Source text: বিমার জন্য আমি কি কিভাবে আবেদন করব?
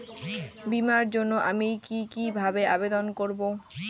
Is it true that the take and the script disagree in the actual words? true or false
false